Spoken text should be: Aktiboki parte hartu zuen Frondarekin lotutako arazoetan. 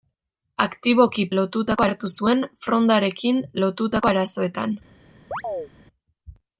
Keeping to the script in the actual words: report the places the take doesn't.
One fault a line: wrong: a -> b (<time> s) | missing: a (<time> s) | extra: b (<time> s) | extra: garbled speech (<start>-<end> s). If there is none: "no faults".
wrong: parte -> lotutako (1.4 s)